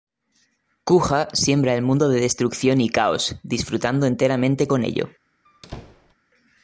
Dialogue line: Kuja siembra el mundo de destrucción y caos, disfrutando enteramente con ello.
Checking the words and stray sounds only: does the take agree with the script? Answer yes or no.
no